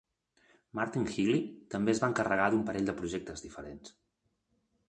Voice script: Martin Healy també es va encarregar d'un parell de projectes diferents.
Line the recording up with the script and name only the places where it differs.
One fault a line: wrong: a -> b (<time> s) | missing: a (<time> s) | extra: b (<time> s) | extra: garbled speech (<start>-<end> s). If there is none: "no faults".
no faults